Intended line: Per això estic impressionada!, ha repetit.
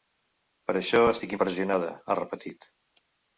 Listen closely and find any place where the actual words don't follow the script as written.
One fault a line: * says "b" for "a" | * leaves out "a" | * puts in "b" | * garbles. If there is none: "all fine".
all fine